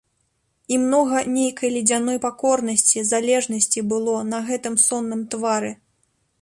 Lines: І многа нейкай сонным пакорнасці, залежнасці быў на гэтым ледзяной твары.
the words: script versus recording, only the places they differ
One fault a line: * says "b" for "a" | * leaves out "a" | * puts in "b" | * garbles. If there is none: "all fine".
* says "ледзяной" for "сонным"
* says "было" for "быў"
* says "сонным" for "ледзяной"